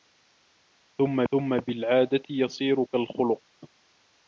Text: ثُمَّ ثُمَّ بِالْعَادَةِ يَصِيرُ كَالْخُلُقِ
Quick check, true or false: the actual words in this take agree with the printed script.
true